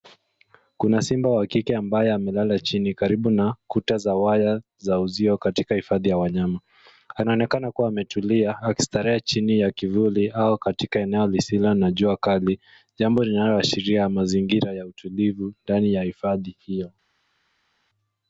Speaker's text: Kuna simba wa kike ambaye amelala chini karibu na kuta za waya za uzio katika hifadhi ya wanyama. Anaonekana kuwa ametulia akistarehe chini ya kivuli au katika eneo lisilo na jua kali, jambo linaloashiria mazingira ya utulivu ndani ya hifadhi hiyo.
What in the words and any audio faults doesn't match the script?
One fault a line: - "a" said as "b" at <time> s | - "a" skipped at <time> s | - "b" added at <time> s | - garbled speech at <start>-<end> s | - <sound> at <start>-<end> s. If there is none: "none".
none